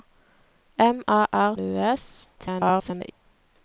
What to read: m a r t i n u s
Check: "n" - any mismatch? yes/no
yes